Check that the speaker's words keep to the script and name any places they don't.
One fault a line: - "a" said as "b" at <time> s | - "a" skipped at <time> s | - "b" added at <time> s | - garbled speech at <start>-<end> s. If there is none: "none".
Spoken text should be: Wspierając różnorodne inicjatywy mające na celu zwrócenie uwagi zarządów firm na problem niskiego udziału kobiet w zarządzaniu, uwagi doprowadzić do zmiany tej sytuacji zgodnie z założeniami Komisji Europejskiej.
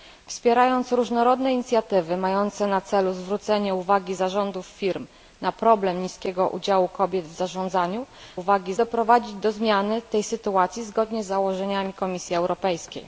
none